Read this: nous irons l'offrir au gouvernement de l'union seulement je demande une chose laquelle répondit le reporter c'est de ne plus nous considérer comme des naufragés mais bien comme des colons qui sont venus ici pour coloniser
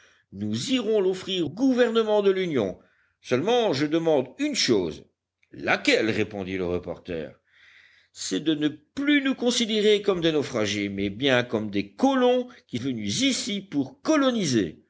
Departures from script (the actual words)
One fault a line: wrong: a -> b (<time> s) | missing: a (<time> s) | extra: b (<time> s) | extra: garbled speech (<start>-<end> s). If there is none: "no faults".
missing: au (1.5 s)
missing: sont (12.8 s)